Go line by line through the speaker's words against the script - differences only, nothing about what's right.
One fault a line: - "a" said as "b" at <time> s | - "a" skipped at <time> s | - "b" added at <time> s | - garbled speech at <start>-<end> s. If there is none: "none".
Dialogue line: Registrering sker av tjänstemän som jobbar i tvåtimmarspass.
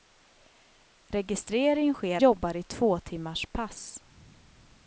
- "av tjänstemän som" skipped at 2.2 s